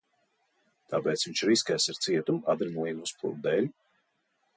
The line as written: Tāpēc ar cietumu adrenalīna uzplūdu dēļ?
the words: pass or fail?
fail